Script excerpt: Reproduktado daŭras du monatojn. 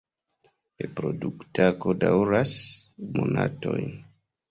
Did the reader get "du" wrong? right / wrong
wrong